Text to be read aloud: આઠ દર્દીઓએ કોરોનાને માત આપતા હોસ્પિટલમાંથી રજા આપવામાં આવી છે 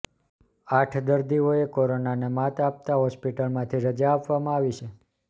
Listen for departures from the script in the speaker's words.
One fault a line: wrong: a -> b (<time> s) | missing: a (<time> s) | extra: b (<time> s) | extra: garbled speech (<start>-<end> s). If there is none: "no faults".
no faults